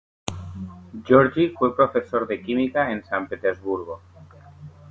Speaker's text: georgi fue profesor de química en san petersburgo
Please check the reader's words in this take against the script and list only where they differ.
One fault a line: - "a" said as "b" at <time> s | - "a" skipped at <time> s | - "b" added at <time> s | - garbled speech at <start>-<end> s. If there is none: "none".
none